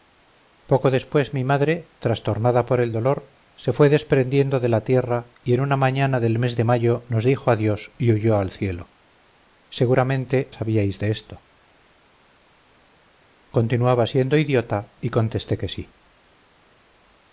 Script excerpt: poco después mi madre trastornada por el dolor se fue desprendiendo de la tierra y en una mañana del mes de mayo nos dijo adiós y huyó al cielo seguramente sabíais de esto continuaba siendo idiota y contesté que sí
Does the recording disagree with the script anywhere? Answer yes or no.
no